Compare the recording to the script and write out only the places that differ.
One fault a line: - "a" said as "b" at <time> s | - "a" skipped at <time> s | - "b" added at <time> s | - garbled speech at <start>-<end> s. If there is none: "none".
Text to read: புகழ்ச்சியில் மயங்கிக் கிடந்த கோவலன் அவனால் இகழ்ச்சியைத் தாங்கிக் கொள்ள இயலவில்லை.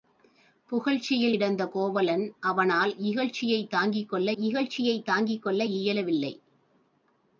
- "மயங்கிக்" skipped at 1.4 s
- "இகழ்ச்சியைத் தாங்கிக் கொள்ள" added at 4.4 s